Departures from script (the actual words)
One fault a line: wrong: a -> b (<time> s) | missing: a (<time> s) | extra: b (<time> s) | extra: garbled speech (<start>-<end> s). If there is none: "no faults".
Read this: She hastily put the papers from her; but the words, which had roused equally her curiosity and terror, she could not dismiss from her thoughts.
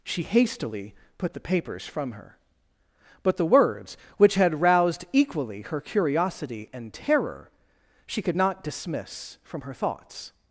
no faults